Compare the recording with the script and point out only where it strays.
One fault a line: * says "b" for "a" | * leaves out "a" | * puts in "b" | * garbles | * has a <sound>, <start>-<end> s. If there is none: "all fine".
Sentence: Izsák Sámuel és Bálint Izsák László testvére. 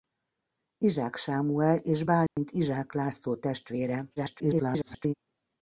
* has a dropout, 2.3-2.4 s
* garbles